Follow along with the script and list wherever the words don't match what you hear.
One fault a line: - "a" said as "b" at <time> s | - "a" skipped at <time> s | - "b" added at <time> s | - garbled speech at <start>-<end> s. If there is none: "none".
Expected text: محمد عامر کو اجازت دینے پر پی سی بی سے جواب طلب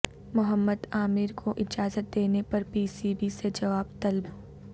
none